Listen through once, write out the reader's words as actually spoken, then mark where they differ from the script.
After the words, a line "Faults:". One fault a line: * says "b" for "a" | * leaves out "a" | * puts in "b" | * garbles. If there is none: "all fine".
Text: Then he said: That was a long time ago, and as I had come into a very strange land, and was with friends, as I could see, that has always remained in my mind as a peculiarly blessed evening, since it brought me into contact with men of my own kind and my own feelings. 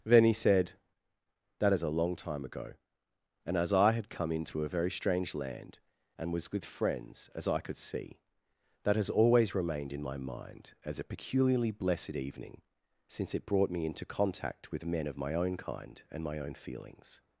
Then he said: That is a long time ago, and as I had come into a very strange land, and was with friends, as I could see, that has always remained in my mind as a peculiarly blessed evening, since it brought me into contact with men of my own kind and my own feelings.
Faults:
* says "is" for "was"